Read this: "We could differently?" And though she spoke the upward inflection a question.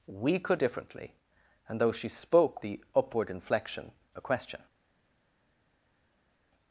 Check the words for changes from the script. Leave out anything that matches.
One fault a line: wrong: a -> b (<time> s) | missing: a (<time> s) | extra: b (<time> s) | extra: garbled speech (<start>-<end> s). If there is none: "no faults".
no faults